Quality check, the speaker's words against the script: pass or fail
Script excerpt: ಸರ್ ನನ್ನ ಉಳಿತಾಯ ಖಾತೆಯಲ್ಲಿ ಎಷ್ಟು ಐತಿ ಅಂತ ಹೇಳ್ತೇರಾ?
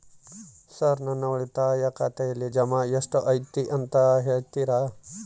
fail